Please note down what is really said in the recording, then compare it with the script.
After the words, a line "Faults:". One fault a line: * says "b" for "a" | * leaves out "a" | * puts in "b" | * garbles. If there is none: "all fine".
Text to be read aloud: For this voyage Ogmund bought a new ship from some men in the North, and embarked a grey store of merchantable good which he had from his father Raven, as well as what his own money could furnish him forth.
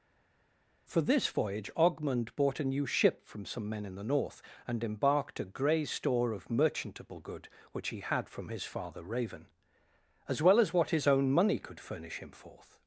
For this voyage Ogmund bought a new ship from some men in the North, and embarked a grey store of merchantable good which he had from his father Raven, as well as what his own money could furnish him forth.
Faults:
all fine